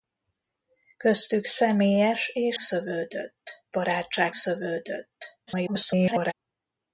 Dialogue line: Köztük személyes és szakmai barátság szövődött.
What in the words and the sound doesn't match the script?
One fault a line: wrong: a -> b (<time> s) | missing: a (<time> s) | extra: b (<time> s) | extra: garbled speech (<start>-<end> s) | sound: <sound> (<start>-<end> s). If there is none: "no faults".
wrong: szakmai -> szövődött (2.6 s)
extra: garbled speech (5.5-6.3 s)